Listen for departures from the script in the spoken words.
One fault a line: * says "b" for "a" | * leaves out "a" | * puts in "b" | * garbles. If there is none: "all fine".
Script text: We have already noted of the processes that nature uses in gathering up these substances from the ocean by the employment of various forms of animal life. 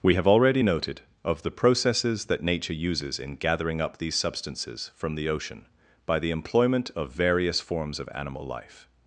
all fine